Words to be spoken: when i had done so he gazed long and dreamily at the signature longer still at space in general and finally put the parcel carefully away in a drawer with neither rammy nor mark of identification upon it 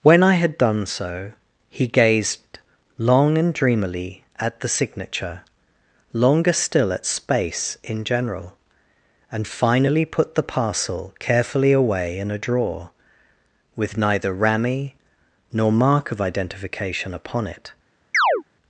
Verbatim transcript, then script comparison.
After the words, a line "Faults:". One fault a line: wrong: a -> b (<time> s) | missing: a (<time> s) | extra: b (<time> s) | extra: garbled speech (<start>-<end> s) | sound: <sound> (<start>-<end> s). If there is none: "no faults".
when i had done so he gazed long and dreamily at the signature longer still at space in general and finally put the parcel carefully away in a drawer with neither rammy nor mark of identification upon it
Faults:
sound: chirp (18.1-18.4 s)